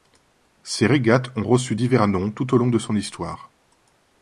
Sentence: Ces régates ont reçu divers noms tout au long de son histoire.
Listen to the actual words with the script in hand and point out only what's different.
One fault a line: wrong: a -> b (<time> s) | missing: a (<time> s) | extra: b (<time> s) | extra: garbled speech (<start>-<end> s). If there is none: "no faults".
no faults